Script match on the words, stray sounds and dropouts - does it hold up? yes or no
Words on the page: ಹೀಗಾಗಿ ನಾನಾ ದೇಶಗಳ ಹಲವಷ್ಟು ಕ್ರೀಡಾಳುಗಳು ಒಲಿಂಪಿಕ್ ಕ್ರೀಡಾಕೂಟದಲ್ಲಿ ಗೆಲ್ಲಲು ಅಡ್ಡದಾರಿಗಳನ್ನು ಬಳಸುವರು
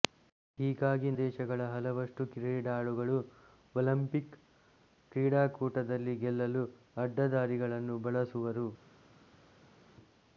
no